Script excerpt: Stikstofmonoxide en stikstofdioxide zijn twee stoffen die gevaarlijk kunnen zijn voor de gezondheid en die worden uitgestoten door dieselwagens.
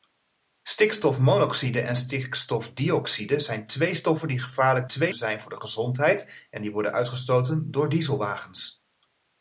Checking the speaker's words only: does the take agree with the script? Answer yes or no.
no